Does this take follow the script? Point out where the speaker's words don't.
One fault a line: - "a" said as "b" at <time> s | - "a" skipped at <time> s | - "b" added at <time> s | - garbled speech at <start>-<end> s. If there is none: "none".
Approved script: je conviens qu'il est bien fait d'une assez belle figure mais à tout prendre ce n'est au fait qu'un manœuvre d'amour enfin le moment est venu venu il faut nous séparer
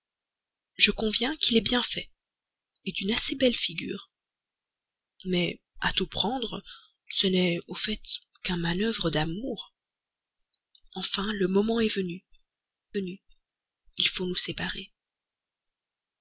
none